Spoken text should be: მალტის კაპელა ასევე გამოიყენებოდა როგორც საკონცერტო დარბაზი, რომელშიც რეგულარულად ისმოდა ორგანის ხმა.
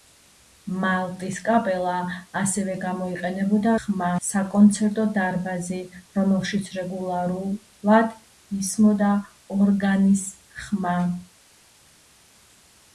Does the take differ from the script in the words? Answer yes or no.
yes